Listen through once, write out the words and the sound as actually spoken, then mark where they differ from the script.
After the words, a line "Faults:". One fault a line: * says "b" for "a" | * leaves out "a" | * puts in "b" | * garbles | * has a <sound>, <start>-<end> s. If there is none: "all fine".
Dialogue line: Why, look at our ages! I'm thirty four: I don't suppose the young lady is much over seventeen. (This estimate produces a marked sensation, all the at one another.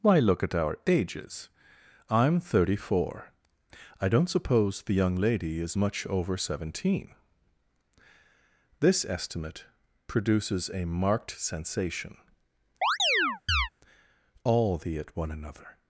Why, look at our ages! I'm thirty four: I don't suppose the young lady is much over seventeen. (This estimate produces a marked sensation, all the at one another.
Faults:
* has a chirp, 12.8-13.7 s